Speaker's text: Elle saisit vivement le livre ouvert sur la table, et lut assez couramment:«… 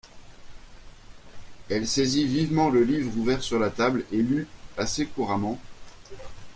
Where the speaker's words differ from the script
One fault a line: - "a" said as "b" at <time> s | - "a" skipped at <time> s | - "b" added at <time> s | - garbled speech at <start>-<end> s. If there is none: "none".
none